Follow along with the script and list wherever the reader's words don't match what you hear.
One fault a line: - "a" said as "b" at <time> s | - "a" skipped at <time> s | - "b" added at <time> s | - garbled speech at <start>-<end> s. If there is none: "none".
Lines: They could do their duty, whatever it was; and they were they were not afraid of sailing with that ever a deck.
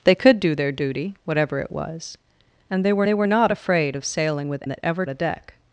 none